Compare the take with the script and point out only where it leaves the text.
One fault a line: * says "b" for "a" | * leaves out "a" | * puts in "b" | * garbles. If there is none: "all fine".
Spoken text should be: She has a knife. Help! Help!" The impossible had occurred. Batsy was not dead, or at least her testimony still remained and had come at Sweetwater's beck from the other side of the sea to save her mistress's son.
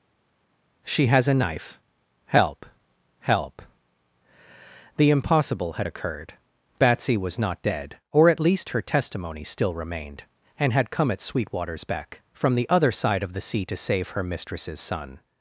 all fine